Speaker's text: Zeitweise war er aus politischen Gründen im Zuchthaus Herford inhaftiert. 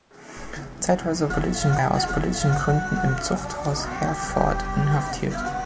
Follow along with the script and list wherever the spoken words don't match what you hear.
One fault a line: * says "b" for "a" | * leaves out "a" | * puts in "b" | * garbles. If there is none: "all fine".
* says "politischen" for "war"